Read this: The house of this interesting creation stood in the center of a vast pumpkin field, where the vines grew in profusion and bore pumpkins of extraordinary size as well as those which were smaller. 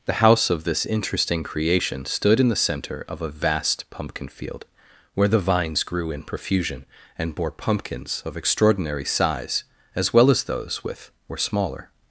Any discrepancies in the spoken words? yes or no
yes